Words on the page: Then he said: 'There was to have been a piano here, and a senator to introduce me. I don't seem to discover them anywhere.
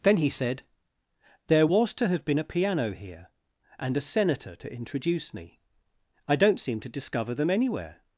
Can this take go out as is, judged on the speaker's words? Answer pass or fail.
pass